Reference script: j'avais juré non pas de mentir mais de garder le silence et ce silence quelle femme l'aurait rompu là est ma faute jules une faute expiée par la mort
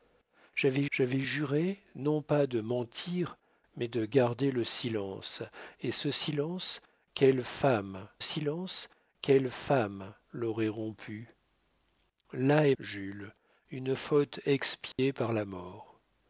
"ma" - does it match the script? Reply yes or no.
no